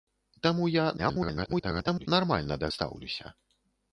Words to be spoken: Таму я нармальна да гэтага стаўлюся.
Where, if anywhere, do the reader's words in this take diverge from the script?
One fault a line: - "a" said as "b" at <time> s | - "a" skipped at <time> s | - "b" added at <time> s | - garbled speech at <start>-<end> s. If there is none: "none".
- garbled speech at 1.0-2.1 s
- "гэтага" skipped at 2.7 s